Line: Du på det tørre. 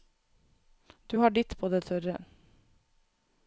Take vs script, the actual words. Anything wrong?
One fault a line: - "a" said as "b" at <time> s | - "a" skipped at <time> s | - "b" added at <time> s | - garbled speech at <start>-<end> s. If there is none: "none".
- "har ditt" added at 1.2 s